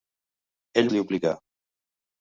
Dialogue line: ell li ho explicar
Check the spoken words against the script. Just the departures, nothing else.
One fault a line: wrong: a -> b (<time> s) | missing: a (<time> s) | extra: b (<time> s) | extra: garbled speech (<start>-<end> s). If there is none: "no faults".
no faults